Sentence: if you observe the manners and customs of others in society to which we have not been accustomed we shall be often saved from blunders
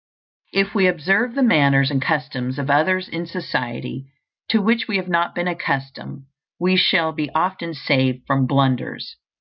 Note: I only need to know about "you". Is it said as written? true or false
false